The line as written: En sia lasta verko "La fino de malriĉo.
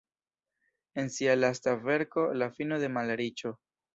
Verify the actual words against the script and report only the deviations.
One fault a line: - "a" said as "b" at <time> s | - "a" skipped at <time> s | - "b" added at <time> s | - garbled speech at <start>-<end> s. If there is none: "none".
none